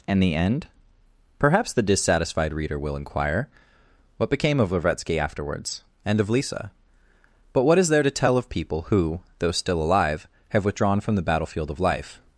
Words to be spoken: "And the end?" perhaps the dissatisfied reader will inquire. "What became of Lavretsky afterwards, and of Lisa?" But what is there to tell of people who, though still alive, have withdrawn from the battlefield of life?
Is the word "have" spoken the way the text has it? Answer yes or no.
yes